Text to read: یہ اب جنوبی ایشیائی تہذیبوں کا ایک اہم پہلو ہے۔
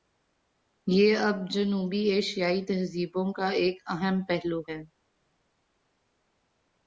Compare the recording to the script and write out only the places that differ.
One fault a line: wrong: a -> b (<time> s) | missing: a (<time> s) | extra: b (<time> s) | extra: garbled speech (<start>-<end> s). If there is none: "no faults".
no faults